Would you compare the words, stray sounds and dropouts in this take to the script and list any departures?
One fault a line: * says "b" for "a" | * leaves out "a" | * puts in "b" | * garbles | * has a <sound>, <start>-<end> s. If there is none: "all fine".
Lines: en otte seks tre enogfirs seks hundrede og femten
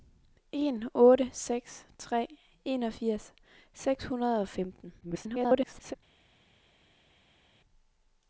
* garbles